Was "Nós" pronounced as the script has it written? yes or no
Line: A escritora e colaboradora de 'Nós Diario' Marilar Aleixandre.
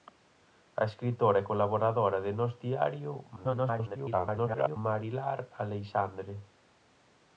yes